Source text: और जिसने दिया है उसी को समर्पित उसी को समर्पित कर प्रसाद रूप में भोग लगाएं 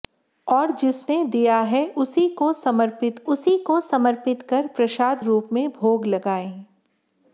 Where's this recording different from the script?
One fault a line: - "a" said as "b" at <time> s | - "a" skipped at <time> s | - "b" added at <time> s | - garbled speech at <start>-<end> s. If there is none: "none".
none